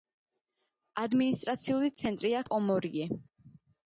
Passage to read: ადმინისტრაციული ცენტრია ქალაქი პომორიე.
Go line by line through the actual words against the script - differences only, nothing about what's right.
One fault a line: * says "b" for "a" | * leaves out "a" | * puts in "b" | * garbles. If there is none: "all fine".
* leaves out "ქალაქი"